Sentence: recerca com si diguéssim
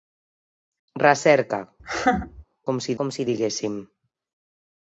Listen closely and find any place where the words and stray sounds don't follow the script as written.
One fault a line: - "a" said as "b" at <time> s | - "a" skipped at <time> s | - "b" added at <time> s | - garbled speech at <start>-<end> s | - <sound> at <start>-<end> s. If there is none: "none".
- laugh at 1.8-2.4 s
- "com si" added at 3.0 s